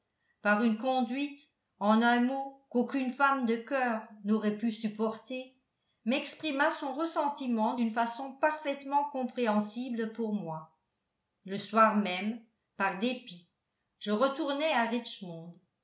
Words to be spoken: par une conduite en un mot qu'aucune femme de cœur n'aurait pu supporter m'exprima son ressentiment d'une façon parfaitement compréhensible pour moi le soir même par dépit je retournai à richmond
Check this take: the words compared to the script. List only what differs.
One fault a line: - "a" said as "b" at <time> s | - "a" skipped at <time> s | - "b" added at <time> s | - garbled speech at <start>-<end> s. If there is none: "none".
none